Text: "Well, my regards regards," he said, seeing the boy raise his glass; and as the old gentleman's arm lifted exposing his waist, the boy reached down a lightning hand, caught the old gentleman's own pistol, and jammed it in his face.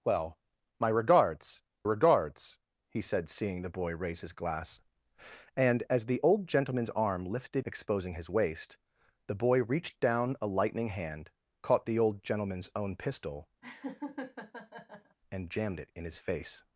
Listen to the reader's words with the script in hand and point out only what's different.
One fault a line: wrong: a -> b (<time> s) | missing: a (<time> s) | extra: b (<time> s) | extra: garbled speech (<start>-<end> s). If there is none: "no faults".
no faults